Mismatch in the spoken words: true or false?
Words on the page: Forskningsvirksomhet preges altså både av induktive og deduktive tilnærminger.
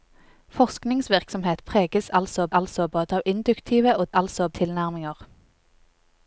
true